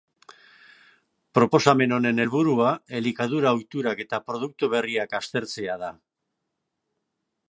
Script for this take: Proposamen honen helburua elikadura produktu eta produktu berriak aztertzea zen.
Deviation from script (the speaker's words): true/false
true